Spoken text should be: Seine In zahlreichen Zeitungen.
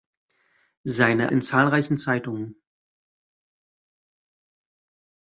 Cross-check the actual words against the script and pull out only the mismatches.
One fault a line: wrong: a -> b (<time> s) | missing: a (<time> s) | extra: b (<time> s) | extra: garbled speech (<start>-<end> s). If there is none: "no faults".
no faults